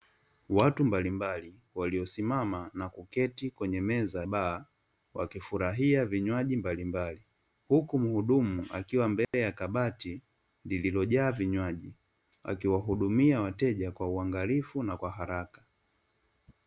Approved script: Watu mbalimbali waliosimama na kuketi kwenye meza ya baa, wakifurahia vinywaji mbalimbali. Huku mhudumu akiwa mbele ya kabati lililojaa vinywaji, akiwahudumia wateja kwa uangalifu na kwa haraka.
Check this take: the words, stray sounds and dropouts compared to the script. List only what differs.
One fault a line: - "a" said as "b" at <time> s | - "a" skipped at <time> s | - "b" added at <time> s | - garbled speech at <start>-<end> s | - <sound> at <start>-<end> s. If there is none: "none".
- "ya" skipped at 4.2 s
- dropout at 9.2-9.3 s